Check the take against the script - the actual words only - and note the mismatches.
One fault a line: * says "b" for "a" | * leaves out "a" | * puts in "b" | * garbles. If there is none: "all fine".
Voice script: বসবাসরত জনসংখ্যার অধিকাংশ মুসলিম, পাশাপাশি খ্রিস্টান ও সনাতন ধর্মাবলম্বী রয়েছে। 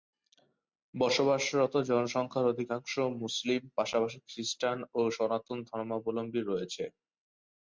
all fine